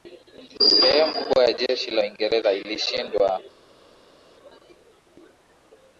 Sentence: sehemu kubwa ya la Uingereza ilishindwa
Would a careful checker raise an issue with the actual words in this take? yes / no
yes